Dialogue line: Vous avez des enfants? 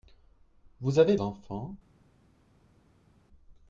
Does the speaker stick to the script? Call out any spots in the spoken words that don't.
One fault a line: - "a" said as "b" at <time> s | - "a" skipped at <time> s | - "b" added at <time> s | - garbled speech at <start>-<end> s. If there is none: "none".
- "des" skipped at 1.1 s